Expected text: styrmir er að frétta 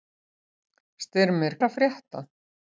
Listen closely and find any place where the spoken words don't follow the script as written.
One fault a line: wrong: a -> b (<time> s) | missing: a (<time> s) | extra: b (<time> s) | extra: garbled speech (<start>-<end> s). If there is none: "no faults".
no faults